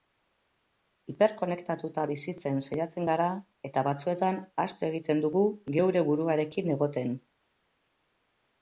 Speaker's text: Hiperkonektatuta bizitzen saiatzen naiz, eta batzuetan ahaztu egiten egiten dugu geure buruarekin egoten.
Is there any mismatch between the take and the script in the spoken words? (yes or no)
yes